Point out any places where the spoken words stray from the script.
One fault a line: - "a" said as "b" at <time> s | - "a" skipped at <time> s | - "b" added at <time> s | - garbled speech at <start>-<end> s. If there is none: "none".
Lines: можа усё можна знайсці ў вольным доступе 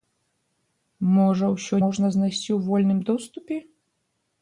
none